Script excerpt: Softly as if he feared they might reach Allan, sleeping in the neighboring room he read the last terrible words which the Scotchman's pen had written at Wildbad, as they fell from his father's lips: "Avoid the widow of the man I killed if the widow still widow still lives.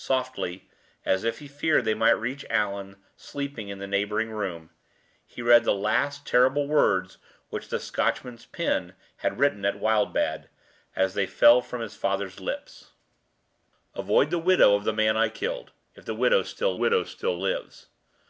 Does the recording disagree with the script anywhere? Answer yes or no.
no